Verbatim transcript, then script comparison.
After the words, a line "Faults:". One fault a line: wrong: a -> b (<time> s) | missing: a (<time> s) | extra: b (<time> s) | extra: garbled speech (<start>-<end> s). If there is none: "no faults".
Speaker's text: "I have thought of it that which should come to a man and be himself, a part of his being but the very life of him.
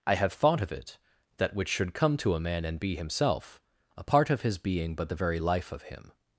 "I have thought of it that which should come to a man and be himself, a part of his being but the very life of him.
Faults:
no faults